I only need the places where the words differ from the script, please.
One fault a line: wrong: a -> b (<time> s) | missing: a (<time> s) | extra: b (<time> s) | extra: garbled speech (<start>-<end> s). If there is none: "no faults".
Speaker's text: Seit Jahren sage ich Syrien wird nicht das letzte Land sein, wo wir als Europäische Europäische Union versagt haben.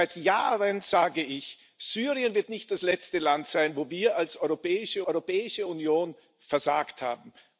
no faults